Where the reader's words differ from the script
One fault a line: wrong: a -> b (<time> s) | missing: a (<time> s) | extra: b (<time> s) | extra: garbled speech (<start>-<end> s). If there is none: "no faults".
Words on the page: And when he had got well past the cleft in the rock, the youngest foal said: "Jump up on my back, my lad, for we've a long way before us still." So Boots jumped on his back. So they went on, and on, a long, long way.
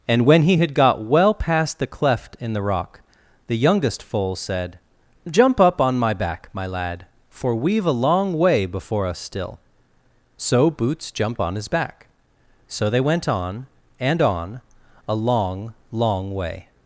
no faults